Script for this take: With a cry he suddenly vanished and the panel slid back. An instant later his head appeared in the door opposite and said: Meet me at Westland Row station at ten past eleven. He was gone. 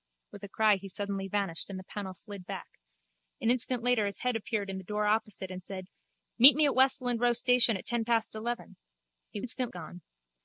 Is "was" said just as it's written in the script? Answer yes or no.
no